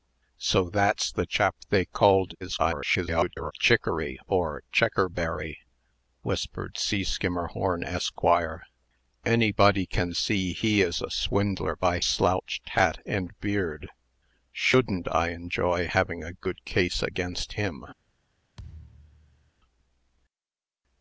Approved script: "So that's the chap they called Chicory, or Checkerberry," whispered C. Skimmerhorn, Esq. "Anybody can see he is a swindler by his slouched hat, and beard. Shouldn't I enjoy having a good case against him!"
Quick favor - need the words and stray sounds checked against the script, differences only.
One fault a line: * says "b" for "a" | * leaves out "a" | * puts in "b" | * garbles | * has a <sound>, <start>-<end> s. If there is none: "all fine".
* garbles
* leaves out "his"
* has a thud, 18.6-19.5 s